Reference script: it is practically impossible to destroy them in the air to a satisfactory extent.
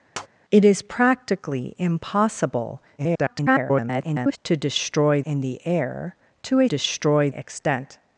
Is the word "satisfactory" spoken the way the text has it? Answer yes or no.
no